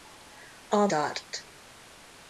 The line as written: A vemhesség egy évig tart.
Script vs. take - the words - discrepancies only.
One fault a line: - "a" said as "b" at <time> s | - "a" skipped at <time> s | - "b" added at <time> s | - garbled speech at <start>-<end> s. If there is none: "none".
- "vemhesség egy évig" skipped at 0.9 s